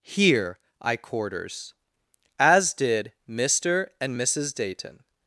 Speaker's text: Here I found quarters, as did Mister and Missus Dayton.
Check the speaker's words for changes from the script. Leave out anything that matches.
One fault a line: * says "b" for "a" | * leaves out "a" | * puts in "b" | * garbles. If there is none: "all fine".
* leaves out "found"